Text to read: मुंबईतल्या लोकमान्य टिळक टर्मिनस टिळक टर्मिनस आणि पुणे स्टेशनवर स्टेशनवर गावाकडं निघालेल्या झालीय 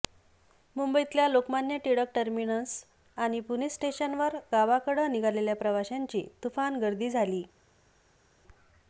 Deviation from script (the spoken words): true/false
true